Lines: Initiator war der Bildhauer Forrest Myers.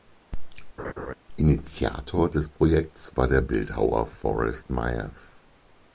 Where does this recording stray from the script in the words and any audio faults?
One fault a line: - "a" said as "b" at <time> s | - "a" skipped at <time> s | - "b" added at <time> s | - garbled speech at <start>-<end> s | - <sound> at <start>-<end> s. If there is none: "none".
- laugh at 0.8-1.1 s
- "des Projekts" added at 2.3 s